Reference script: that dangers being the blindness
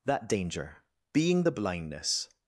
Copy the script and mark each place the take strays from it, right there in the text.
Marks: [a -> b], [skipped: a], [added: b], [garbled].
that [dangers -> danger] being the blindness